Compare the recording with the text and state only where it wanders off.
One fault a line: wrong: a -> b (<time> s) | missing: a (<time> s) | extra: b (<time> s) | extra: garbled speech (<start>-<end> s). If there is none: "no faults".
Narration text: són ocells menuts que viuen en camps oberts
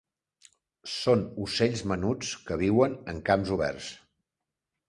no faults